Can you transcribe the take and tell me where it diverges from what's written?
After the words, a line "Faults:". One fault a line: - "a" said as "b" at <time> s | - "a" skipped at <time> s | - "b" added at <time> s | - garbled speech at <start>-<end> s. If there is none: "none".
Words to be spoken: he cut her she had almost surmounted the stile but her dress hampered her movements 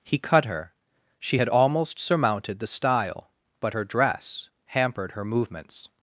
he cut her she had almost surmounted the stile but her dress hampered her movements
Faults:
none